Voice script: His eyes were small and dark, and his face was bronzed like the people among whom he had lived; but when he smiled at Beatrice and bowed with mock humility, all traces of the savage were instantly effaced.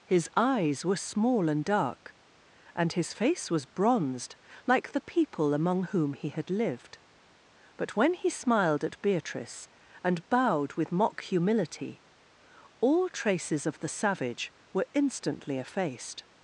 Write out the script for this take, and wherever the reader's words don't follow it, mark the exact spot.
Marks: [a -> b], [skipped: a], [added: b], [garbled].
His eyes were small and dark, and his face was bronzed like the people among whom he had lived; but when he smiled at Beatrice and bowed with mock humility, all traces of the savage were instantly effaced.